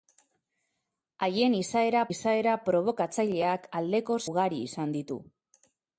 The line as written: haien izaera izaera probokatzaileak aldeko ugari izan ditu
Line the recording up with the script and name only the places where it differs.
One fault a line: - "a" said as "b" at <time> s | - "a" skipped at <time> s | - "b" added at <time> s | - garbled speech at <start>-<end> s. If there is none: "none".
none